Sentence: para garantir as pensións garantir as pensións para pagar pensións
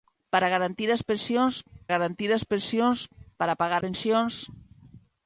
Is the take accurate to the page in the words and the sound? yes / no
yes